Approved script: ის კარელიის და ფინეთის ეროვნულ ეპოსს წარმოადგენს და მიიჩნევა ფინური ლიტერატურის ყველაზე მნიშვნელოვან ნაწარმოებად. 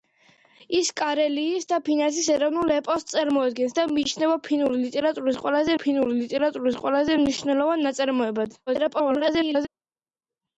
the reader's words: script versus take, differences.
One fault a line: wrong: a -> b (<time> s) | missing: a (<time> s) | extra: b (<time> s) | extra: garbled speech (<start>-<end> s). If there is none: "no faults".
extra: ფინური ლიტერატურის ყველაზე (5.8 s)
extra: garbled speech (8.7-9.7 s)